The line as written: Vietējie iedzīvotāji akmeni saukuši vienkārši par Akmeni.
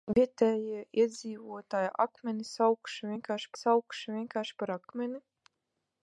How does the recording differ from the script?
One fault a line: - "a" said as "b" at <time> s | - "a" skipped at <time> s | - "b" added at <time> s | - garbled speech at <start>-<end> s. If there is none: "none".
- "saukuši vienkārši" added at 3.6 s